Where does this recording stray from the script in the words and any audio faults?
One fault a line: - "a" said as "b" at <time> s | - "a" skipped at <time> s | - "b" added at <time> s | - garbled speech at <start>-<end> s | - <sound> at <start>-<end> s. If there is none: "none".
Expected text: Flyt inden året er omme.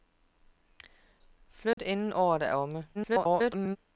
- dropout at 1.7-1.8 s
- garbled speech at 2.9-3.8 s